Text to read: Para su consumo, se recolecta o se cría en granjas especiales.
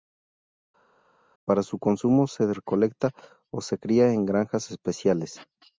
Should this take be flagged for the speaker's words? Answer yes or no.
no